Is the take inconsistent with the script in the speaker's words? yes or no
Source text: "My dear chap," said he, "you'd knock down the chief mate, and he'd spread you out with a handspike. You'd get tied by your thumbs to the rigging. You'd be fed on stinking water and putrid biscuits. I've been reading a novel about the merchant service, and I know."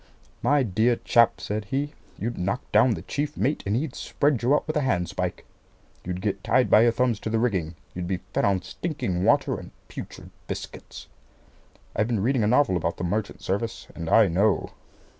no